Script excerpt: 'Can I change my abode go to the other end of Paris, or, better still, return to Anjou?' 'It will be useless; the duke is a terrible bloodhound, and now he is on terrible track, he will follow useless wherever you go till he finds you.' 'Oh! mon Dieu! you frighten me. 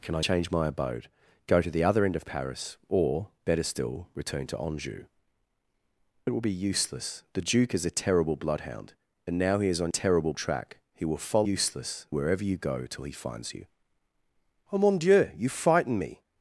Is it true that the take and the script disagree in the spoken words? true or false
false